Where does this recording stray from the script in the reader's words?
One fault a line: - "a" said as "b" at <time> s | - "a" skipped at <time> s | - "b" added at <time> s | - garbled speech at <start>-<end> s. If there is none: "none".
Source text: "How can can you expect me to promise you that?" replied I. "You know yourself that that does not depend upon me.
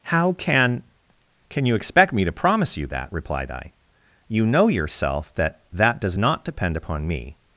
none